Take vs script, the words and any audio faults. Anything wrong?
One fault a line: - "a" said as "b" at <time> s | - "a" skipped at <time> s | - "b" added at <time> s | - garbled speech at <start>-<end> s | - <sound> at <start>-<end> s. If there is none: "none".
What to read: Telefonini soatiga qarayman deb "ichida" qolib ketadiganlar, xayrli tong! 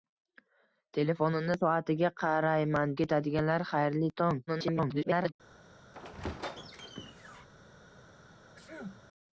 - "deb ichida qolib" skipped at 2.9 s
- garbled speech at 4.5-5.3 s
- squeak at 5.9-7.5 s
- sneeze at 8.5-9.0 s